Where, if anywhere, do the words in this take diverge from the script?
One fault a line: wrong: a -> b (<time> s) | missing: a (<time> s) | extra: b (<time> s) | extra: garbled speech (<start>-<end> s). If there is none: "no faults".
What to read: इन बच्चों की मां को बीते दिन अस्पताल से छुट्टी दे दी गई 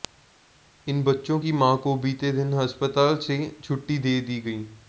no faults